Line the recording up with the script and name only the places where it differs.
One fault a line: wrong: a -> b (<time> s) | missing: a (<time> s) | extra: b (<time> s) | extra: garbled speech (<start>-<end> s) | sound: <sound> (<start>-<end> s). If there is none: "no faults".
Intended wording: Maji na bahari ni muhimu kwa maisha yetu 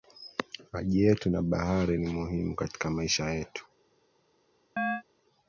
extra: yetu (1.0 s)
wrong: kwa -> katika (2.6 s)
sound: chirp (4.8-5.0 s)